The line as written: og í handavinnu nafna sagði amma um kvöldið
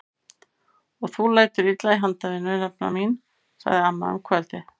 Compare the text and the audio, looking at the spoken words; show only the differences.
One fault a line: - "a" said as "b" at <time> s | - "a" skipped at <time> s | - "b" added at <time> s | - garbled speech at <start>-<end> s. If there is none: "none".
- "þú lætur illa" added at 1.2 s
- "mín" added at 3.0 s